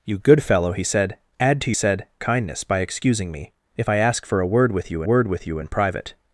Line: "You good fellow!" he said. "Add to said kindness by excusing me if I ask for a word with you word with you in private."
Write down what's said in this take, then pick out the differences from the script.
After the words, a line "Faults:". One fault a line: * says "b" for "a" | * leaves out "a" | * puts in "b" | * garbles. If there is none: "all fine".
"You good fellow!" he said. "Add to said kindness by excusing me if I ask for a word with you word with you in private."
Faults:
all fine